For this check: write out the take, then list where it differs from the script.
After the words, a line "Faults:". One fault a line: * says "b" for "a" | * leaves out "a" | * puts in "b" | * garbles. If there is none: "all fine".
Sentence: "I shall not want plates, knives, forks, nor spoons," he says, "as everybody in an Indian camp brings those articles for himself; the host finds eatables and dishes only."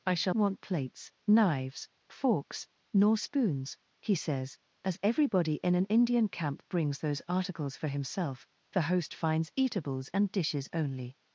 "I shall want plates, knives, forks, nor spoons," he says, "as everybody in an Indian camp brings those articles for himself; the host finds eatables and dishes only."
Faults:
* leaves out "not"